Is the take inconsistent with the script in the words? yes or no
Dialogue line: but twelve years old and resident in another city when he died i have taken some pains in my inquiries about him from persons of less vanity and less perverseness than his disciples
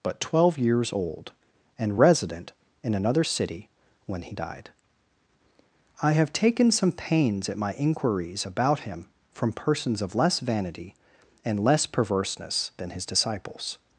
yes